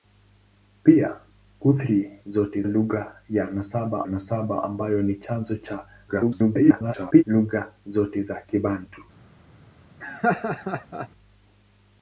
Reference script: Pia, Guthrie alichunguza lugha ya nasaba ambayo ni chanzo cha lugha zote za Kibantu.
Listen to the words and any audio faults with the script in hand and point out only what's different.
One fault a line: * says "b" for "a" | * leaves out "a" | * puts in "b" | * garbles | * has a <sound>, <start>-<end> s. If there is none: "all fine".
* says "zote" for "alichunguza"
* puts in "nasaba"
* garbles
* has a laugh, 10.0-11.1 s